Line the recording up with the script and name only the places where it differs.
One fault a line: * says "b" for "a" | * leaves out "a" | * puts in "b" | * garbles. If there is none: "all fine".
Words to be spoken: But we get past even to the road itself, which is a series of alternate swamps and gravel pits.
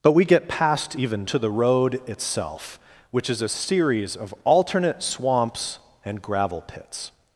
all fine